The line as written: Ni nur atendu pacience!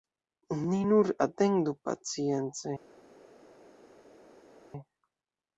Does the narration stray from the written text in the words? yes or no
no